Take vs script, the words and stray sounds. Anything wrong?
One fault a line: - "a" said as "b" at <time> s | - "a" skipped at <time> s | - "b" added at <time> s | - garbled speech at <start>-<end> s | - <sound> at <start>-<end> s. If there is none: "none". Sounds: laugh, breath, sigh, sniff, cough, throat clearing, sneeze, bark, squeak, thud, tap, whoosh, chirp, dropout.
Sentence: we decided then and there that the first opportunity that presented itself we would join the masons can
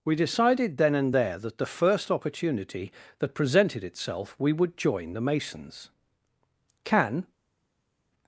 none